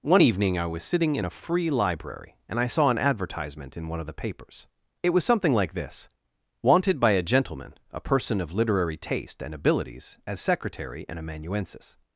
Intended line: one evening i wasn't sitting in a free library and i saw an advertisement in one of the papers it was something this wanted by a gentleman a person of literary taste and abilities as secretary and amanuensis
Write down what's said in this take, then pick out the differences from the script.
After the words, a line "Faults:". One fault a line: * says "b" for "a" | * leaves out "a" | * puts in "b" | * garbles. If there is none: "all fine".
one evening i was sitting in a free library and i saw an advertisement in one of the papers it was something like this wanted by a gentleman a person of literary taste and abilities as secretary and amanuensis
Faults:
* says "was" for "wasn't"
* puts in "like"